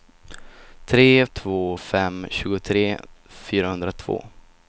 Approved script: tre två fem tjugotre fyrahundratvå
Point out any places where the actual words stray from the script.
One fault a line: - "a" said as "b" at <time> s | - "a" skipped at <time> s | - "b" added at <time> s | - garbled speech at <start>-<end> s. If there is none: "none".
none